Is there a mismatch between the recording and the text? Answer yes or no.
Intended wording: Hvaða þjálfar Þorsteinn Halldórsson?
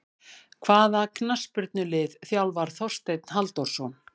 yes